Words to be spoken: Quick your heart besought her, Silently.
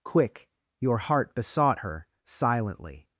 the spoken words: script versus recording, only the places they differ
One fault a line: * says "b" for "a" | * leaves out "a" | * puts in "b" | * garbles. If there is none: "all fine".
all fine